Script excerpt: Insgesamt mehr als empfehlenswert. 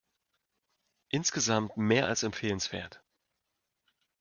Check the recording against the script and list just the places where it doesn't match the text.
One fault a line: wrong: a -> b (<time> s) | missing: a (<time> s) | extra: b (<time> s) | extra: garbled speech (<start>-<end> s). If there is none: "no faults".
no faults